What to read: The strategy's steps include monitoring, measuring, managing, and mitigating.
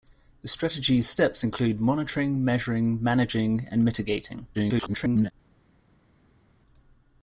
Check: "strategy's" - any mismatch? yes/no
no